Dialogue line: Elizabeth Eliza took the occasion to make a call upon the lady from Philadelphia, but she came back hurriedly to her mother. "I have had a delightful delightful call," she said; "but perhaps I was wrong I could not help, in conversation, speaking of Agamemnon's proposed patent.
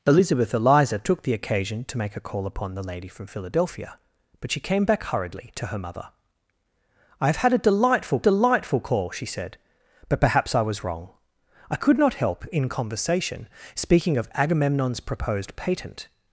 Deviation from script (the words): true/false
false